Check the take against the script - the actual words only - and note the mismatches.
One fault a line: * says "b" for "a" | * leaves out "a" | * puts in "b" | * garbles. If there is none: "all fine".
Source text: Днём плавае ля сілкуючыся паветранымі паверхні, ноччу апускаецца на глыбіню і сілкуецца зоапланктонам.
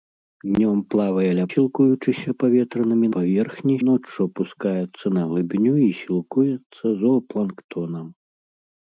all fine